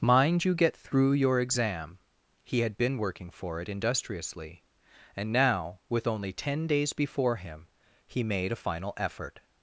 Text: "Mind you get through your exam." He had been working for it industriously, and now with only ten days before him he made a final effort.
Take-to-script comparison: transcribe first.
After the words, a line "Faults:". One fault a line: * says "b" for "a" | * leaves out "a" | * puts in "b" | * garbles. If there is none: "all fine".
"Mind you get through your exam." He had been working for it industriously, and now with only ten days before him he made a final effort.
Faults:
all fine